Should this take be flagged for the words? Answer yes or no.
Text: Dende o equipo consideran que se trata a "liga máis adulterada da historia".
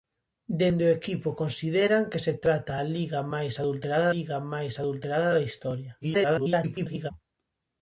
yes